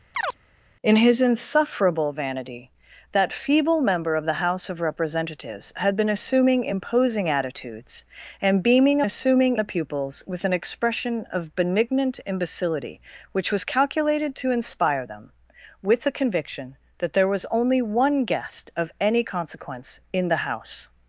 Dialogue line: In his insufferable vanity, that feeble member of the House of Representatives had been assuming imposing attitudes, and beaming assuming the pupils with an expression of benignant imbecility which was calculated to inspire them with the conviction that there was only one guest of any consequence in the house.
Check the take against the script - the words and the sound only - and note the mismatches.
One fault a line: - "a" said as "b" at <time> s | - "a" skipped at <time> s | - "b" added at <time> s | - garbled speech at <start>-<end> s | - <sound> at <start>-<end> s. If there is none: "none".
- chirp at 0.1-0.4 s